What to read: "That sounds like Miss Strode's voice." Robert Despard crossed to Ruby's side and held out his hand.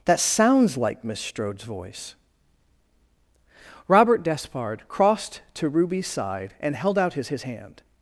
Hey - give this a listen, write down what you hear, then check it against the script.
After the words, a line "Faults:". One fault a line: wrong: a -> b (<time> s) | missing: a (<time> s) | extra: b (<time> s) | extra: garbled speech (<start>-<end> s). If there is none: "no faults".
"That sounds like Miss Strode's voice." Robert Despard crossed to Ruby's side and held out his his hand.
Faults:
extra: his (7.3 s)